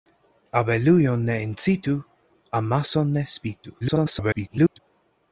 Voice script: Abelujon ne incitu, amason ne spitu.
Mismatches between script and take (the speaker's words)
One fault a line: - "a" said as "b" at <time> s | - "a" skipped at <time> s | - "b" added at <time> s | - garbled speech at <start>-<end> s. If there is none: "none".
- garbled speech at 3.8-4.8 s